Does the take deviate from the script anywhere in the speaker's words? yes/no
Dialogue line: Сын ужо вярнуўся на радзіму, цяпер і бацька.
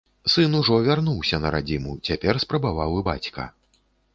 yes